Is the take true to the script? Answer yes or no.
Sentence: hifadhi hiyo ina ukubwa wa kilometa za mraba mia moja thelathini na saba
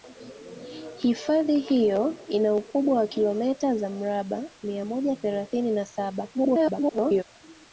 no